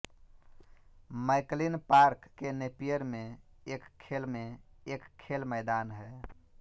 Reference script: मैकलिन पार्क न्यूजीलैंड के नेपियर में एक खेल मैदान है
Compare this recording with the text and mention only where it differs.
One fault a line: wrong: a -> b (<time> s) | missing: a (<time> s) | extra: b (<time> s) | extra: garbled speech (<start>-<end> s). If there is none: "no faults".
missing: न्यूजीलैंड (2.3 s)
extra: में एक खेल (4.3 s)